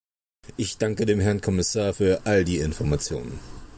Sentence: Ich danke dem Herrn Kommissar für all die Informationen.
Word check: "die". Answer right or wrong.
right